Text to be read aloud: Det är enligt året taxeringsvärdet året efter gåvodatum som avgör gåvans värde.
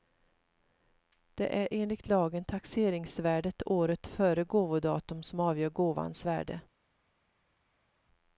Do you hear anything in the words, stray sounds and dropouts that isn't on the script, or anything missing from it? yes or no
yes